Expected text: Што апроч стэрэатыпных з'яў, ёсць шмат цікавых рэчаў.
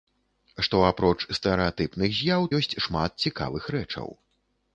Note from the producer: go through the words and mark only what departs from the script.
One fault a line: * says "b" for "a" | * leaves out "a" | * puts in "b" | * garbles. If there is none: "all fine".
all fine